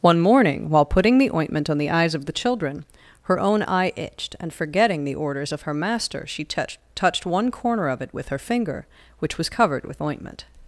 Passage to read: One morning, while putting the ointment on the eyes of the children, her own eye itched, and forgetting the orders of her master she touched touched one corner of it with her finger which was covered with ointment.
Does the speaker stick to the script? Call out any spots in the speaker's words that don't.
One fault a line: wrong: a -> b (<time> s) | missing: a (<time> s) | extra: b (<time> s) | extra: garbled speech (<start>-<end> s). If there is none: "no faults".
no faults